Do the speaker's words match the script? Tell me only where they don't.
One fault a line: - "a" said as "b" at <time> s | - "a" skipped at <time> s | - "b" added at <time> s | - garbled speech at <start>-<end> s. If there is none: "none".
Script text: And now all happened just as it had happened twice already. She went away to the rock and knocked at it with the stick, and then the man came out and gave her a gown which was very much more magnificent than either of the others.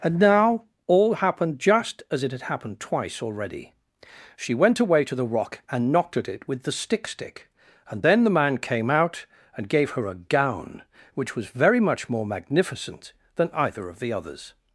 - "stick" added at 7.1 s